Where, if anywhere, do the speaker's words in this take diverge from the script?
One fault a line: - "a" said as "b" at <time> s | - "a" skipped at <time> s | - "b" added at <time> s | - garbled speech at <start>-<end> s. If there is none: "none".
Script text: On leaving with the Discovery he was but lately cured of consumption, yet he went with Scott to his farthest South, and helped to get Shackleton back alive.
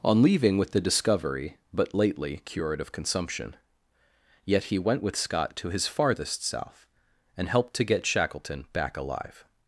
- "he was" skipped at 1.6 s